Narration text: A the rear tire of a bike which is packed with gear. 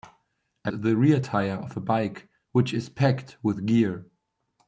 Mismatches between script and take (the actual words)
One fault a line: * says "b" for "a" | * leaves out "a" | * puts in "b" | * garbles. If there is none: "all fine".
all fine